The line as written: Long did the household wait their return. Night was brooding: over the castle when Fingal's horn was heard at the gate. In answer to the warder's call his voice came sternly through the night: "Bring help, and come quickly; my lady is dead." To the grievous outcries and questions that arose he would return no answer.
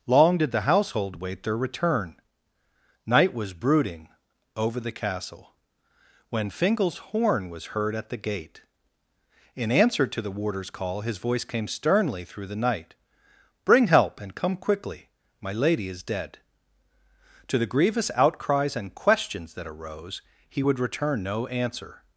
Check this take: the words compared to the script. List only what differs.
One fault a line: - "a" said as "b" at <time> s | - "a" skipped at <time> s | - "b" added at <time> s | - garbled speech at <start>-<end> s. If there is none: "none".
none